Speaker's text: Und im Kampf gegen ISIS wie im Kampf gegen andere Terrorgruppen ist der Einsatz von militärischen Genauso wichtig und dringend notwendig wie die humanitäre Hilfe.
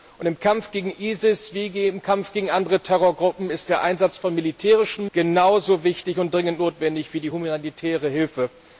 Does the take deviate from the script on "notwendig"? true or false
false